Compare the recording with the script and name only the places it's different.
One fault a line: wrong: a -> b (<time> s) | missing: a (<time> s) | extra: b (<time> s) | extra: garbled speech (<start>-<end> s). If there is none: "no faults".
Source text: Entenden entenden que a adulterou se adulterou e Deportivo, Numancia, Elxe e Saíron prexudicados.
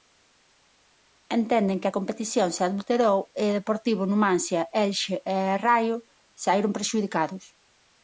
missing: entenden (1.8 s)
wrong: adulterou -> competición (2.0 s)
extra: Raio (5.6 s)